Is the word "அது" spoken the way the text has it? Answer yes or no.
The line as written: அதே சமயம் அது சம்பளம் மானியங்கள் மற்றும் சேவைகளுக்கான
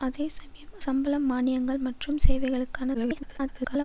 no